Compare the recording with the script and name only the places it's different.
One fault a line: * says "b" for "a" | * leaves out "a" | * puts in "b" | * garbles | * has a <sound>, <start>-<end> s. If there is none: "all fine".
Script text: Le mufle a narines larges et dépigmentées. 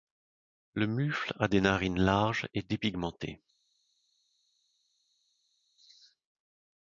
* puts in "des"